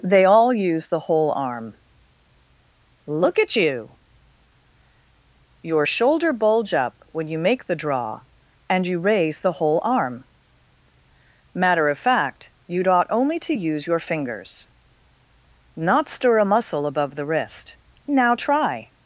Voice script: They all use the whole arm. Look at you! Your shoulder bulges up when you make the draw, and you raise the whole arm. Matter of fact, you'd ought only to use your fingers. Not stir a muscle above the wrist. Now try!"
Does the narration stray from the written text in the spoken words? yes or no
yes